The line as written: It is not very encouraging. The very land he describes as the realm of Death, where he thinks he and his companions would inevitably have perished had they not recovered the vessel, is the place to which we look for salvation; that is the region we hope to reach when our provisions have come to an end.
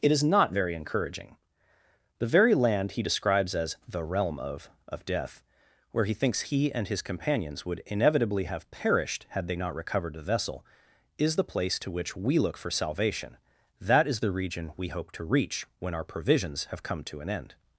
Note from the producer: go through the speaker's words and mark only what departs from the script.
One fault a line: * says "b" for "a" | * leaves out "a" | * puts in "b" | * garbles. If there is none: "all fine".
* puts in "of"